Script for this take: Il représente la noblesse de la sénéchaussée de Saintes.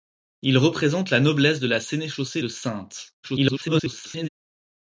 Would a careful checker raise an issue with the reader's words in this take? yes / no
yes